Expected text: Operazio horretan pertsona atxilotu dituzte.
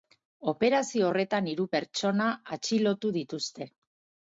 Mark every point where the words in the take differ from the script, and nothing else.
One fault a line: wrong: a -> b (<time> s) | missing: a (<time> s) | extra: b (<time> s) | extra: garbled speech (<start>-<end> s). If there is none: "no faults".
extra: hiru (1.6 s)